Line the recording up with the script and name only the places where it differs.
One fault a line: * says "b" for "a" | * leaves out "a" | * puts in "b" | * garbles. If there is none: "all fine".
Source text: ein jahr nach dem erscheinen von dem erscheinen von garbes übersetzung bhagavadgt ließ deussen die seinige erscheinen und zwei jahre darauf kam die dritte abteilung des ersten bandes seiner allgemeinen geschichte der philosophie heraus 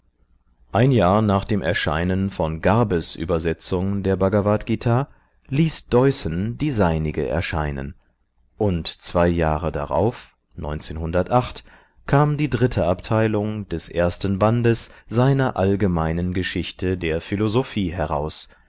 * leaves out "dem erscheinen von"
* puts in "der"